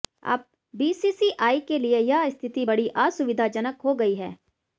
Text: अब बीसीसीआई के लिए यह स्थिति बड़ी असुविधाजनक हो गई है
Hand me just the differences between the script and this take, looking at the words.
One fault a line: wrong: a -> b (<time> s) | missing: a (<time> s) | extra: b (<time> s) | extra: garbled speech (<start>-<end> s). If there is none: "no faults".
no faults